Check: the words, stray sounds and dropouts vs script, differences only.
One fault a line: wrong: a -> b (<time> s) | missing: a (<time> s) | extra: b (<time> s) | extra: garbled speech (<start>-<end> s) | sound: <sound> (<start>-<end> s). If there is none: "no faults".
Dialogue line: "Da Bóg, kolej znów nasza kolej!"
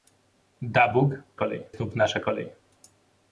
no faults